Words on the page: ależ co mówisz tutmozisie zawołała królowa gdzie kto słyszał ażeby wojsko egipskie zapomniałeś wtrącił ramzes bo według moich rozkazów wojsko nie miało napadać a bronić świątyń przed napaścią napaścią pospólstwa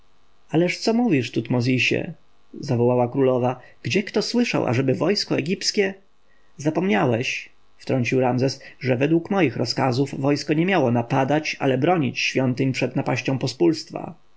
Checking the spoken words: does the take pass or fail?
fail